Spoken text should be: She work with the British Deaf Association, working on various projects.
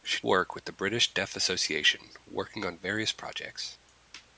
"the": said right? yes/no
yes